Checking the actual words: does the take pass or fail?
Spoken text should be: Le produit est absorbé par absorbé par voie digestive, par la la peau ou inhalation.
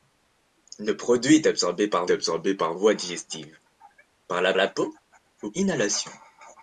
pass